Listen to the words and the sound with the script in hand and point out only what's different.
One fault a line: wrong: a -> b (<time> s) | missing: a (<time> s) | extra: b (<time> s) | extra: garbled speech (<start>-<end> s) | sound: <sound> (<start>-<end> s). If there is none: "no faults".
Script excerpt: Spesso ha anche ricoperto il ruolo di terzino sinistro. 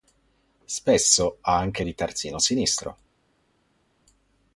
missing: ricoperto il ruolo (1.8 s)